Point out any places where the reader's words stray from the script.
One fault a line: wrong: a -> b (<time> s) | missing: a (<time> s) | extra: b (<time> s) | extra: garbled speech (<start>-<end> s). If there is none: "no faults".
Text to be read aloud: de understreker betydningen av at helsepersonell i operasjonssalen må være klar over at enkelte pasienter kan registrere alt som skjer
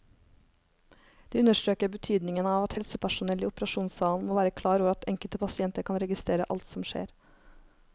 no faults